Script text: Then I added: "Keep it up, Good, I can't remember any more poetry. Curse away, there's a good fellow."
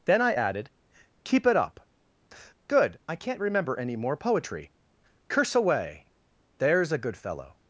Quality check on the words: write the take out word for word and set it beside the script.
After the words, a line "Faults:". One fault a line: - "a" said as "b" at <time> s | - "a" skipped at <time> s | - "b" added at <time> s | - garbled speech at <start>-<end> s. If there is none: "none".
Then I added: "Keep it up, Good, I can't remember any more poetry. Curse away, there's a good fellow."
Faults:
none